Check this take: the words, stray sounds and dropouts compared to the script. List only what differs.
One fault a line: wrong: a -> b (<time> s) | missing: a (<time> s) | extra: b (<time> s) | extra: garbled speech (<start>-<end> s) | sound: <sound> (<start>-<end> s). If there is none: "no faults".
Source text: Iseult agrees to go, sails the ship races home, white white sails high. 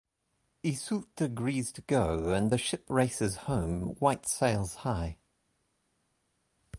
wrong: sails -> and (2.3 s)
missing: white (4.3 s)